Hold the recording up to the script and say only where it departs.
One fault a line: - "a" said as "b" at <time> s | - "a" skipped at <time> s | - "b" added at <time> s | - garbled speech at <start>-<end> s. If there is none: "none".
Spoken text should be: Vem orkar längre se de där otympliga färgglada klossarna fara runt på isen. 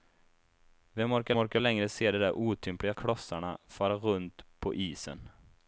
- "orkar" added at 1.4 s
- "färgglada" skipped at 2.9 s